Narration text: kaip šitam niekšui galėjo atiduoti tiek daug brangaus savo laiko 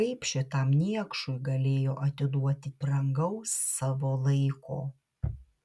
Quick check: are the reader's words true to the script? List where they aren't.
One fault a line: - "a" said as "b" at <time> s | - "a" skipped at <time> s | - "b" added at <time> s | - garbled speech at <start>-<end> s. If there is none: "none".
- "tiek daug" skipped at 2.7 s